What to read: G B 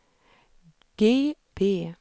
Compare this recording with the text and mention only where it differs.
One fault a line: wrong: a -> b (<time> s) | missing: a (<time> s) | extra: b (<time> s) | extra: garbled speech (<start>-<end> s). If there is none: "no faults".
no faults